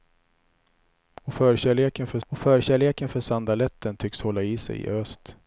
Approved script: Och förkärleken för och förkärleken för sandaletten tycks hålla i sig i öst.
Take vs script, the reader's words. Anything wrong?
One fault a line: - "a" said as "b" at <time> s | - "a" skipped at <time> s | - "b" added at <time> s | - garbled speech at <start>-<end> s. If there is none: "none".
none